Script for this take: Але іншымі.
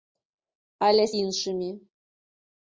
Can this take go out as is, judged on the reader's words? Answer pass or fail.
pass